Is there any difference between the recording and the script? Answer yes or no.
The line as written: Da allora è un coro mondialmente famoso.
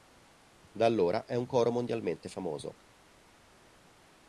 no